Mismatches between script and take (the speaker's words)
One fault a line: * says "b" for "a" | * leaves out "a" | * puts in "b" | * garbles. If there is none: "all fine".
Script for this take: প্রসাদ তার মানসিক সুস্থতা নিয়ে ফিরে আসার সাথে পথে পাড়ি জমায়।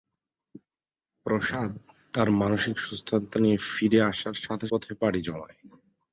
all fine